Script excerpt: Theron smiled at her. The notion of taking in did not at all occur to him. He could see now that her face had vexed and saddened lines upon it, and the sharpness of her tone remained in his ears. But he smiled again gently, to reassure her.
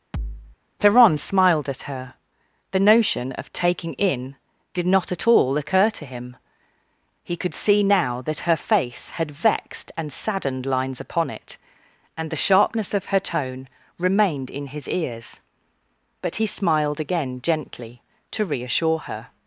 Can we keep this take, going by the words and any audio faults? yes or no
no